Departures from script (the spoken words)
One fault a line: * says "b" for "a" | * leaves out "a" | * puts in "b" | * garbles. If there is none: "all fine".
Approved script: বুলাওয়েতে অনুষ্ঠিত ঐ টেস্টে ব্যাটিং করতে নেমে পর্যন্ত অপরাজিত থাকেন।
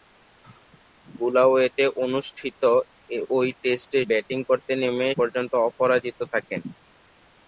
all fine